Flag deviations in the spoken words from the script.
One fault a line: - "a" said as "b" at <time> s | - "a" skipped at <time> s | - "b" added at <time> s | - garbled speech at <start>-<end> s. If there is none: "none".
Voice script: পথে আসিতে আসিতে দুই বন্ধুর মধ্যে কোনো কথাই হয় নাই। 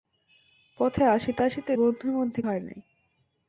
- "দুই" skipped at 1.7 s
- "কোনো কথাই" skipped at 2.4 s